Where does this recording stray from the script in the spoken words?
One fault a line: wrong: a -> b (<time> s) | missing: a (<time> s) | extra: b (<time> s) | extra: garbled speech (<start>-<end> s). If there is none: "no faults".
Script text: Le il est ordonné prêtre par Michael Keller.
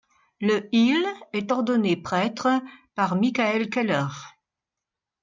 no faults